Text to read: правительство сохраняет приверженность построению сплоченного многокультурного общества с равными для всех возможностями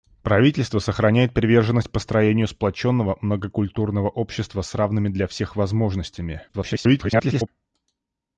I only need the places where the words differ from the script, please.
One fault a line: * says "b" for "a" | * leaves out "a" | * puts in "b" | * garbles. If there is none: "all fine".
* garbles